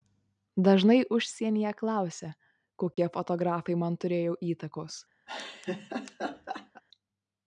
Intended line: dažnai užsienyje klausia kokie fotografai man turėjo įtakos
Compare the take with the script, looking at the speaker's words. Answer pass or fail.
pass